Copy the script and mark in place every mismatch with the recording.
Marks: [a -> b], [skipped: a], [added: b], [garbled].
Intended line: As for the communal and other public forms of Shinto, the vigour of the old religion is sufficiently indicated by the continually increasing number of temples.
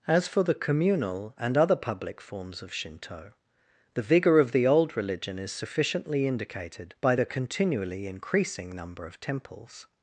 As for the communal and other public forms of Shinto, the vigour of the old religion is sufficiently indicated by the continually increasing number of temples.